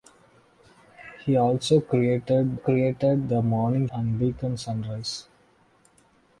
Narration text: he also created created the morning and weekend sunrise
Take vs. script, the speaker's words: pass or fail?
pass